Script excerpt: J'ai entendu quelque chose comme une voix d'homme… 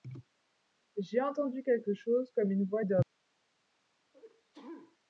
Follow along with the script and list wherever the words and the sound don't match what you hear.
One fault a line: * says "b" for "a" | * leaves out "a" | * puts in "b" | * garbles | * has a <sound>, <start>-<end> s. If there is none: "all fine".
* has a sneeze, 4.1-5.0 s